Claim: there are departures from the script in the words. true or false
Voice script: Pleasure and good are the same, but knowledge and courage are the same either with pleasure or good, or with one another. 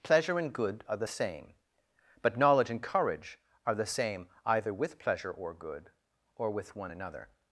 false